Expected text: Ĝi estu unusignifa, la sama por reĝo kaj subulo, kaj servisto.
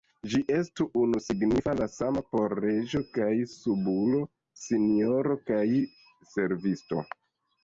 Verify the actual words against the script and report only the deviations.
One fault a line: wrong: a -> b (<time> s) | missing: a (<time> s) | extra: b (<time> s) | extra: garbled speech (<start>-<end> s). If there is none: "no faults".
extra: sinjoro (4.6 s)